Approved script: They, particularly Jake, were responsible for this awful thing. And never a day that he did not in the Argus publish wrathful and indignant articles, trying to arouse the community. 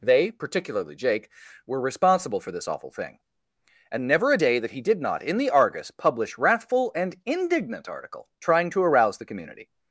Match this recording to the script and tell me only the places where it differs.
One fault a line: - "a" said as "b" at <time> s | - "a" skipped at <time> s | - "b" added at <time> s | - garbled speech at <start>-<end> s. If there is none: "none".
- "articles" said as "article" at 7.9 s